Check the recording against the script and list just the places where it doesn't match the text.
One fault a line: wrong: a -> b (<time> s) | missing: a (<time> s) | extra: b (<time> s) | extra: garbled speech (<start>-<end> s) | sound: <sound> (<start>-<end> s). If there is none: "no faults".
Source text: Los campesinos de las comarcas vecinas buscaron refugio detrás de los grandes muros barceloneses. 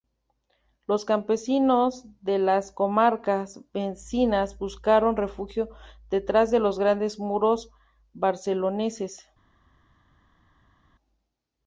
no faults